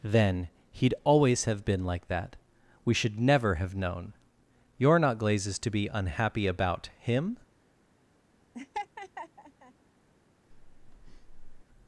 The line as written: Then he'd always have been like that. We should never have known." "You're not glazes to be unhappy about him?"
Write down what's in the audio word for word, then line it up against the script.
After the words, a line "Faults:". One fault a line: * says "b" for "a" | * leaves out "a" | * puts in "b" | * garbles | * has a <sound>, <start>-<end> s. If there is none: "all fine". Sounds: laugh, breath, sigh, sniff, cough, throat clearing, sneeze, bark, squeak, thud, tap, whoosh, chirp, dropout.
Then he'd always have been like that. We should never have known." "You're not glazes to be unhappy about him?"
Faults:
* has a laugh, 8.5-9.7 s
* has a breath, 10.5-11.6 s